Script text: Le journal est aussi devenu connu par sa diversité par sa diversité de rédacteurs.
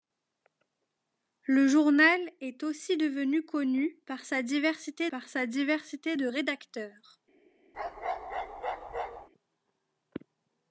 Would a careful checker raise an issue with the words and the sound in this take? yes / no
yes